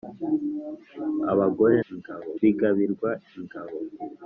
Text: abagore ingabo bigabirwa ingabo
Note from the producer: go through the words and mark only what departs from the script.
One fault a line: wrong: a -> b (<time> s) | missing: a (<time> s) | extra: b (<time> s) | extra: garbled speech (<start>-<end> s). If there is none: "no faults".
no faults